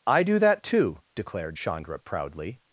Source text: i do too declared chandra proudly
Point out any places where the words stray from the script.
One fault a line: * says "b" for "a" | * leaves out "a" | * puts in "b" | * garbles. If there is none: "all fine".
* puts in "that"